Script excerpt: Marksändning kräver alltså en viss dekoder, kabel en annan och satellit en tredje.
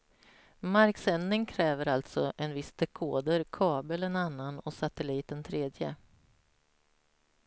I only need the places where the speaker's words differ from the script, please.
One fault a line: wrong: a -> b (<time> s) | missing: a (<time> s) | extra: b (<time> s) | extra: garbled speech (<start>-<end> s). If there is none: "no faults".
no faults